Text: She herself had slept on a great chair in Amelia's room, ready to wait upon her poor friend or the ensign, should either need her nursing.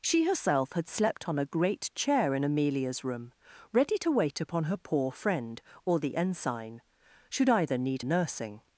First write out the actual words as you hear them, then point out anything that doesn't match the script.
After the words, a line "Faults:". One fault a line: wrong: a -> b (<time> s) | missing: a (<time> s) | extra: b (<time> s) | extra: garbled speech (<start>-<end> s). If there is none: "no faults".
She herself had slept on a great chair in Amelia's room, ready to wait upon her poor friend or the ensign, should either need nursing.
Faults:
missing: her (8.0 s)